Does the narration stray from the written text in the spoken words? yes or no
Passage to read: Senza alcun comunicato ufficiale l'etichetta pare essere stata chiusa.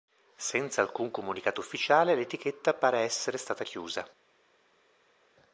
no